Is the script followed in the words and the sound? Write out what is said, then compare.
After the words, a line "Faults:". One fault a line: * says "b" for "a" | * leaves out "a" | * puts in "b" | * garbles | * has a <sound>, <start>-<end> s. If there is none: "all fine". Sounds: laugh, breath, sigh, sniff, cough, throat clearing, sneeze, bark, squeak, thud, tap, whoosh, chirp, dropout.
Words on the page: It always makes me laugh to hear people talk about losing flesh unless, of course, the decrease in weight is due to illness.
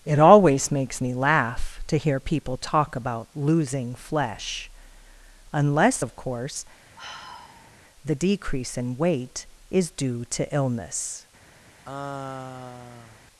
It always makes me laugh to hear people talk about losing flesh unless, of course, the decrease in weight is due to illness.
Faults:
* has a sigh, 7.0-7.8 s
* has a sigh, 11.8-13.2 s